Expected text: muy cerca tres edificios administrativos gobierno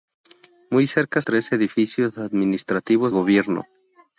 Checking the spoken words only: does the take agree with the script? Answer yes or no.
yes